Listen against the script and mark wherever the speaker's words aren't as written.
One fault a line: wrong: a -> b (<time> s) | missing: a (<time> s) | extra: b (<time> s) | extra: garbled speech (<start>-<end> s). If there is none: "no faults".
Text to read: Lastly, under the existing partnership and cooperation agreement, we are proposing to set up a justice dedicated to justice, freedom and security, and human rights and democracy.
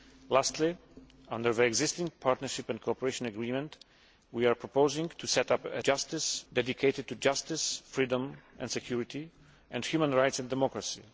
no faults